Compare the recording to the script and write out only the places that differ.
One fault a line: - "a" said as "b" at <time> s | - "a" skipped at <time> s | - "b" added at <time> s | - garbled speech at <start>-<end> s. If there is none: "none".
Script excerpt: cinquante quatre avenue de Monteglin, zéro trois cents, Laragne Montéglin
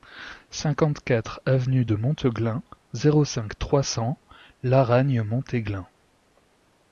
- "cinq" added at 3.3 s